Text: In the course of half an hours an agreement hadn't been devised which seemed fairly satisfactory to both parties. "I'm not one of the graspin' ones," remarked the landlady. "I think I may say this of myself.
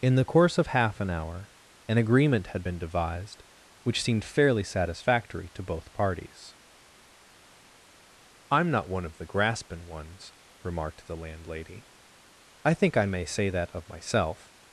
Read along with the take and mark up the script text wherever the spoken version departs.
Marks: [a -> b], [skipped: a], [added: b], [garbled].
In the course of half an [hours -> hour] an agreement [hadn't -> had] been devised which seemed fairly satisfactory to both parties. "I'm not one of the graspin' ones," remarked the landlady. "I think I may say [this -> that] of myself.